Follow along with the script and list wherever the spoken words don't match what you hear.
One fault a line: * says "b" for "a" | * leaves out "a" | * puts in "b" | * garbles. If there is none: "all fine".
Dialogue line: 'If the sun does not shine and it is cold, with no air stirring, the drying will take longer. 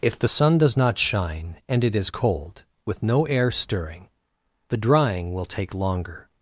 all fine